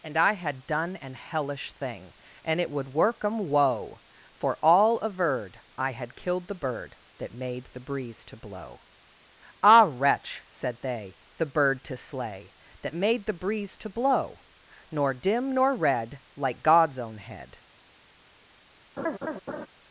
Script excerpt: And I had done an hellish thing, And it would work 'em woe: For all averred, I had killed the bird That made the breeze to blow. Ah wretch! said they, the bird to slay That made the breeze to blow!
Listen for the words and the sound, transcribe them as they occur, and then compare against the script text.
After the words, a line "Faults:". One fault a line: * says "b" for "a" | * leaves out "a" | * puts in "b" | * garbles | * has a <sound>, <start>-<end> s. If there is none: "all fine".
And I had done an hellish thing, And it would work 'em woe: For all averred, I had killed the bird That made the breeze to blow. Ah wretch! said they, the bird to slay That made the breeze to blow! Nor dim nor red, like God's own head
Faults:
* puts in "Nor dim nor red like God's own head"
* has a laugh, 19.0-19.7 s